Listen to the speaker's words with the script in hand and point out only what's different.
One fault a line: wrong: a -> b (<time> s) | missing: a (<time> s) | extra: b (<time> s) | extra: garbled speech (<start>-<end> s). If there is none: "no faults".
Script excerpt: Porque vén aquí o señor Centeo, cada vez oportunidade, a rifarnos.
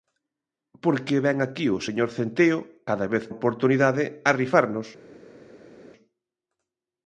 no faults